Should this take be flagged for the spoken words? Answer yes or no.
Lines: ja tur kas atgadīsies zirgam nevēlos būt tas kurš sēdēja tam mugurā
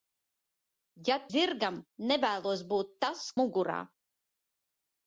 yes